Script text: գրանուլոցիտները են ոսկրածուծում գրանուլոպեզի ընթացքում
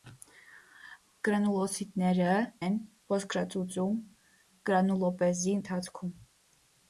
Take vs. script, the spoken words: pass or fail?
pass